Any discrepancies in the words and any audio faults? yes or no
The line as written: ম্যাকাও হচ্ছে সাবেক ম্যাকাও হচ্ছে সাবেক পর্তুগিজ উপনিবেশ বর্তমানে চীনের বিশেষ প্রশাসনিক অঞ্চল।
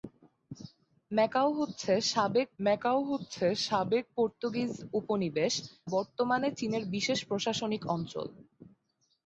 no